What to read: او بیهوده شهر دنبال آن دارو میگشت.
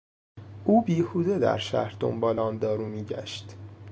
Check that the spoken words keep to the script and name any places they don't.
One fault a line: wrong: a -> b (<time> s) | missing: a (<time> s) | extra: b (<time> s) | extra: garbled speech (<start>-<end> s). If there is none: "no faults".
extra: در (1.4 s)